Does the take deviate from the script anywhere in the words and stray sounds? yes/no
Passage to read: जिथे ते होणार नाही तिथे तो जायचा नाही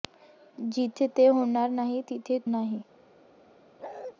yes